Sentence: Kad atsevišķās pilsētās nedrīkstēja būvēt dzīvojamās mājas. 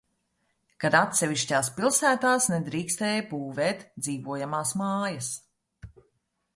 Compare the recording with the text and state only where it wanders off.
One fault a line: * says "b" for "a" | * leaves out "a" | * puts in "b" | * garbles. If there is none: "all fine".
all fine